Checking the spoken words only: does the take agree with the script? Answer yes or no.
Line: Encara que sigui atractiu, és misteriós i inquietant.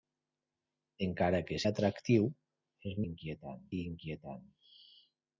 no